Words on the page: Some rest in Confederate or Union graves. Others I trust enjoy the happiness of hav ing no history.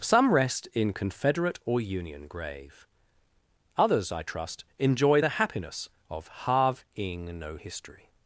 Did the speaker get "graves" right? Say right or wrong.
wrong